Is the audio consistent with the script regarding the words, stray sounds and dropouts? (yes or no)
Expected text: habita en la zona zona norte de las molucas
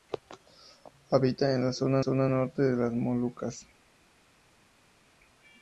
yes